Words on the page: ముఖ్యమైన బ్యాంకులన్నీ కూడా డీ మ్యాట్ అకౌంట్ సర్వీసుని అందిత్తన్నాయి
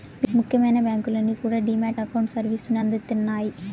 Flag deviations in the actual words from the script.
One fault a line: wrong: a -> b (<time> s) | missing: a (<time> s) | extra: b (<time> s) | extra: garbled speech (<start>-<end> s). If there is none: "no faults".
no faults